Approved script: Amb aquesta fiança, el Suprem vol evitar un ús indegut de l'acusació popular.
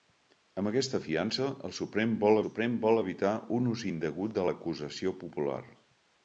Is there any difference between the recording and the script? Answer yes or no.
yes